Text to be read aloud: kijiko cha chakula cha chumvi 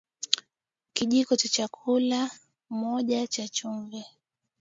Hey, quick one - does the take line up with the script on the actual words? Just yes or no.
no